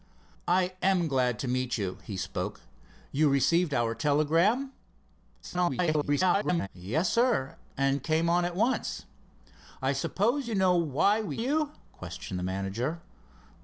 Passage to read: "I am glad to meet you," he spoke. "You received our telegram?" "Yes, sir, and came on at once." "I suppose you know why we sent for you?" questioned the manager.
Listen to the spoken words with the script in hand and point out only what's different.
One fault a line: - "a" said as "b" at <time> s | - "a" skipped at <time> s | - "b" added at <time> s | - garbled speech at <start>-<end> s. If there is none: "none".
- garbled speech at 5.4-6.7 s
- "sent for" skipped at 11.4 s